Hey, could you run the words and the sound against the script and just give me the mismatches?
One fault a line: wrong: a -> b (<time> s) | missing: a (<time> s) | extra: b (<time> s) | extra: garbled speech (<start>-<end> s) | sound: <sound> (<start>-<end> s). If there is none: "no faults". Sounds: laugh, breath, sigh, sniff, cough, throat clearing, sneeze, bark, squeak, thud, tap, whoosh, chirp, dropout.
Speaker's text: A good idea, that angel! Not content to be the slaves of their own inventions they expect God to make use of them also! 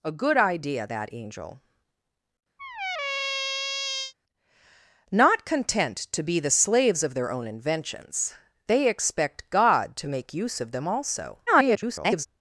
sound: squeak (2.6-4.1 s)
extra: garbled speech (11.5-12.3 s)